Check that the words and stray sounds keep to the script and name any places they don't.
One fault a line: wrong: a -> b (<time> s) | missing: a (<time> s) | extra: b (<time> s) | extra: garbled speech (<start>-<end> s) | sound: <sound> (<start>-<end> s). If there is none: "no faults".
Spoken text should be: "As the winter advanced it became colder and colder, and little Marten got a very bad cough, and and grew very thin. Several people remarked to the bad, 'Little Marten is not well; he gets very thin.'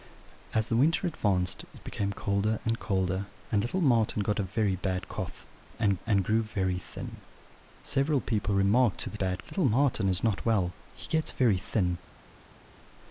no faults